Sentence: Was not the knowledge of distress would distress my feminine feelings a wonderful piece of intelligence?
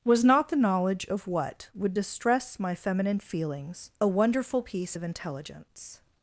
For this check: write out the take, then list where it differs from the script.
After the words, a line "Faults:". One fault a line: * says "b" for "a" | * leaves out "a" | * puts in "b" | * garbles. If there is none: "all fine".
Was not the knowledge of what would distress my feminine feelings a wonderful piece of intelligence?
Faults:
* says "what" for "distress"